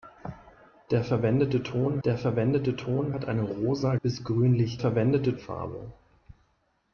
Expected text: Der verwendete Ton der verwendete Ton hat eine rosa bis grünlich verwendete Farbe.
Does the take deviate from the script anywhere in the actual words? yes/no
no